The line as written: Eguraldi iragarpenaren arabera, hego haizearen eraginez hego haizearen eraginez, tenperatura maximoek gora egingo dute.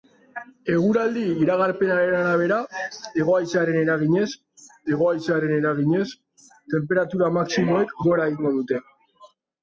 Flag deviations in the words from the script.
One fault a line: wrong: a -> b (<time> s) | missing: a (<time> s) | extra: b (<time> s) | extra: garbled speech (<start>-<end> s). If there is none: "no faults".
no faults